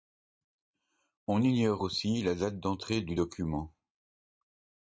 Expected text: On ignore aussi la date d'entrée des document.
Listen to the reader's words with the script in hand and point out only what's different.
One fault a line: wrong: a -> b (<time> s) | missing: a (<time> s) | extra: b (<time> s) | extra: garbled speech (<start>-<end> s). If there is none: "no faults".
wrong: des -> du (3.0 s)